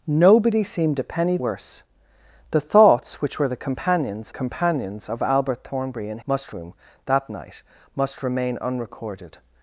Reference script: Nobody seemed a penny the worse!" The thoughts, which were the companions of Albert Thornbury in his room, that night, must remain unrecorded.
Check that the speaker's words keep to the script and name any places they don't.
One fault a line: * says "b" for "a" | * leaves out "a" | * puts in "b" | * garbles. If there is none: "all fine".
* leaves out "the"
* puts in "companions"
* says "must" for "his"